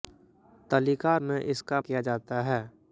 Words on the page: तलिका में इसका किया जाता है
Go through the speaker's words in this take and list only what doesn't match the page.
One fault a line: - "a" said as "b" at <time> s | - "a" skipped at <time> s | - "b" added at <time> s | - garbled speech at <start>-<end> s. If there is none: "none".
none